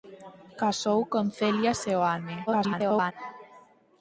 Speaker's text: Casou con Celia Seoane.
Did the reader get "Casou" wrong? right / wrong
right